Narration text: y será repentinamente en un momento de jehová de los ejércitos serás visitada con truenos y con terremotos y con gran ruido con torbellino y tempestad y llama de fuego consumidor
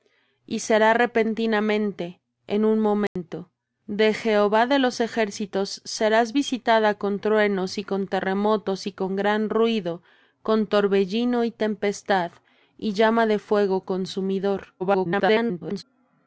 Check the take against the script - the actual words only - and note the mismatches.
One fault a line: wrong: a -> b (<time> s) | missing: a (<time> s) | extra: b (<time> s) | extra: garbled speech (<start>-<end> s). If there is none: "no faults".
extra: garbled speech (14.8-15.8 s)